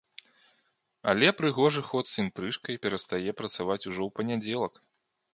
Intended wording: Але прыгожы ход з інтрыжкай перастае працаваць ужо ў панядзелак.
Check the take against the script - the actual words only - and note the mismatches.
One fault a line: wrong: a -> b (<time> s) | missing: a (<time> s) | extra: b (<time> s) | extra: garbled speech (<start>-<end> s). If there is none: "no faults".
no faults